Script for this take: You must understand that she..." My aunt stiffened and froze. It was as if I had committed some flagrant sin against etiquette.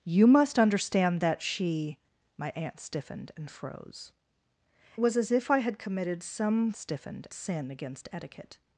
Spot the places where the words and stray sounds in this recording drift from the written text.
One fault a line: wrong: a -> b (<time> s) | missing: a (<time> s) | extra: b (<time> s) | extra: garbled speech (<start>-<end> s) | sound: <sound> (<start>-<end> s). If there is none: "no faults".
missing: It (4.1 s)
wrong: flagrant -> stiffened (6.7 s)